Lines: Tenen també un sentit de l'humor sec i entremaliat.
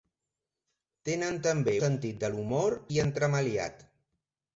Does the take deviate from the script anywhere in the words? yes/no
yes